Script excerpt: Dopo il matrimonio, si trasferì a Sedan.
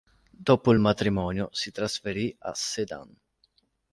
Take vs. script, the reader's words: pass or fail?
pass